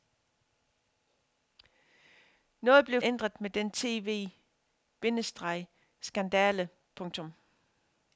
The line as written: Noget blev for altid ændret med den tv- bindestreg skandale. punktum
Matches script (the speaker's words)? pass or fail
fail